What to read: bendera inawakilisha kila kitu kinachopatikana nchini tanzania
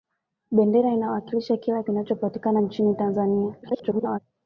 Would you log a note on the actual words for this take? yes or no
yes